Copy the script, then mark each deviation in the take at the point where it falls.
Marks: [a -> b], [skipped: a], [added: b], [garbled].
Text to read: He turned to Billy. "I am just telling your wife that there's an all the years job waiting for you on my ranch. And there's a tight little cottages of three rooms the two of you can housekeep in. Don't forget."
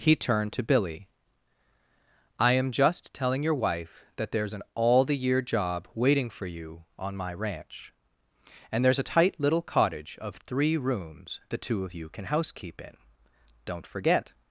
He turned to Billy. "I am just telling your wife that there's an all the [years -> year] job waiting for you on my ranch. And there's a tight little [cottages -> cottage] of three rooms the two of you can housekeep in. Don't forget."